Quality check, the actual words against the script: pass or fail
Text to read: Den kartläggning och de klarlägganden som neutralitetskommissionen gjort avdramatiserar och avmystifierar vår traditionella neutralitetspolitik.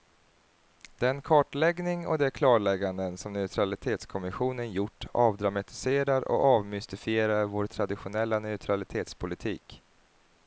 pass